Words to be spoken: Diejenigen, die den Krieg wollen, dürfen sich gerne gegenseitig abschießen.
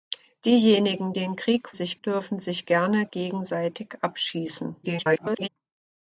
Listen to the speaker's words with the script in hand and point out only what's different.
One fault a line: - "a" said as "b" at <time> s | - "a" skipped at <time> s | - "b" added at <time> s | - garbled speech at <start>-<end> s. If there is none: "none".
- "die" skipped at 1.1 s
- "wollen" said as "sich" at 1.7 s
- garbled speech at 4.8-5.5 s